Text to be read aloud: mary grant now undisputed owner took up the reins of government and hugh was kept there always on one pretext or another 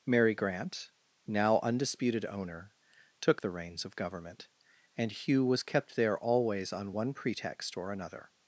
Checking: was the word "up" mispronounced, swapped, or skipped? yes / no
yes